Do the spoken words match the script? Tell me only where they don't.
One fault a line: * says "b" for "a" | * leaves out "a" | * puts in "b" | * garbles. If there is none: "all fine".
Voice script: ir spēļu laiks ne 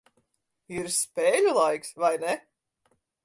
* puts in "vai"